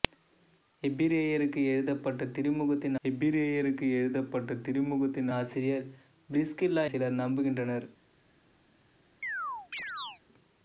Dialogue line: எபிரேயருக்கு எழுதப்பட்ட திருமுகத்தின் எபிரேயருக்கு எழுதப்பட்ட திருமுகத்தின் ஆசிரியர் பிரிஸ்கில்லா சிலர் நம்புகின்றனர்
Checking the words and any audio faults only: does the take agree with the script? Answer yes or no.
no